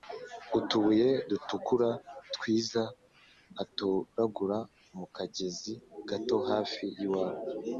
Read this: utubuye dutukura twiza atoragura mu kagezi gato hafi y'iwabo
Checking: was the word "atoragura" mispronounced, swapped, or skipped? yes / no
no